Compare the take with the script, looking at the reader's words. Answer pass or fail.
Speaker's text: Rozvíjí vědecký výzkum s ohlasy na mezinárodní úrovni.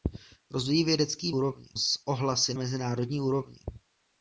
fail